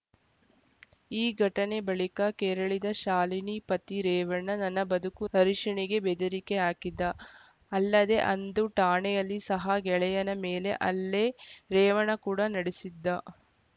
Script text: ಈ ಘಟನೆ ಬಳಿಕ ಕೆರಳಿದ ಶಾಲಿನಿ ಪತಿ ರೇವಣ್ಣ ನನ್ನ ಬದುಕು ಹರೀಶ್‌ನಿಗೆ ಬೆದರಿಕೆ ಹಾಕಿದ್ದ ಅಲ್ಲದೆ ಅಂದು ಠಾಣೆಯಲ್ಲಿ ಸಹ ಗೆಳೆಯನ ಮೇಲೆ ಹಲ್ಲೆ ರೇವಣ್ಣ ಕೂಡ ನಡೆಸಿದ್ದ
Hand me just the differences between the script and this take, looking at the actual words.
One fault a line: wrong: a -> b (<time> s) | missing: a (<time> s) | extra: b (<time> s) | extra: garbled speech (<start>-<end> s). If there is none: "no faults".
no faults